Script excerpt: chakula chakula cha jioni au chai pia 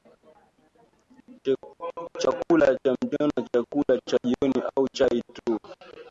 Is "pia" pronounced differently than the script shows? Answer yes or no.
yes